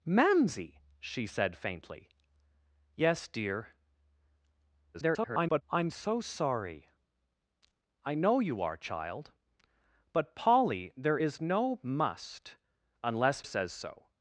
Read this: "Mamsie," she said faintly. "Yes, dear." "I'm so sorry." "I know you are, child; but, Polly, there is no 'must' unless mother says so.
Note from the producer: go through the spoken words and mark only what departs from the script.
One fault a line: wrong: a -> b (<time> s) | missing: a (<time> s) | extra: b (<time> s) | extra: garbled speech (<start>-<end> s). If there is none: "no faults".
extra: garbled speech (4.9-5.6 s)
missing: mother (13.4 s)